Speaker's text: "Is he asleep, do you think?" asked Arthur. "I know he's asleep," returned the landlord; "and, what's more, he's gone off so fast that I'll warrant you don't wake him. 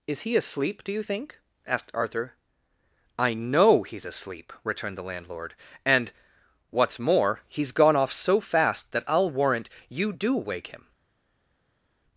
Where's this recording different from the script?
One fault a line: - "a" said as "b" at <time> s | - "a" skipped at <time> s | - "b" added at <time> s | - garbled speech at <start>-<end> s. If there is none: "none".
- "don't" said as "do" at 10.1 s